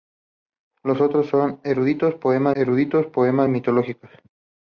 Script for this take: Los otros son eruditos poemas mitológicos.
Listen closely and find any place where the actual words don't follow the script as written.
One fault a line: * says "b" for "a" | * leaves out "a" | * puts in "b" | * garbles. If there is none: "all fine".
* puts in "eruditos poemas"